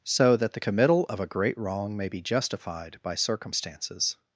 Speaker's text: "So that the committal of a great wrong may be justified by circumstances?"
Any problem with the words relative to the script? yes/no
no